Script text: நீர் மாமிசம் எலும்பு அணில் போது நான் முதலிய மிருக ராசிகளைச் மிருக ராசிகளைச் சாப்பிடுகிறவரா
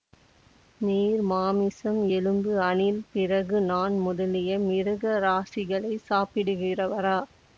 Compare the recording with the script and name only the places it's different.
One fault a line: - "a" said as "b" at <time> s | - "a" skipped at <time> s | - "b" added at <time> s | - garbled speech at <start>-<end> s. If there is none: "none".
- "போது" said as "பிறகு" at 3.1 s
- "மிருக ராசிகளைச்" skipped at 6.1 s